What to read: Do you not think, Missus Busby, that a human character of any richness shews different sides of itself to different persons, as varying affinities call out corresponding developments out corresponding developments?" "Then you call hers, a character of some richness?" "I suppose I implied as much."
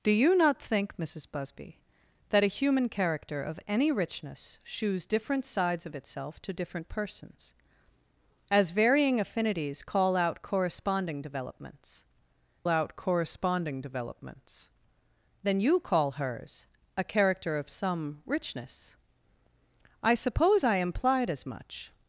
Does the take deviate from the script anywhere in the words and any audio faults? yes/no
no